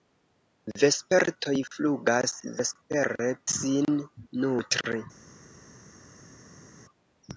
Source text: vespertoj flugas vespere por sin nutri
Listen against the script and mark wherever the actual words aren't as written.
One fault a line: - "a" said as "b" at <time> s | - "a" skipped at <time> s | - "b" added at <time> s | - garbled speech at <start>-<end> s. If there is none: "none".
- "por" skipped at 3.3 s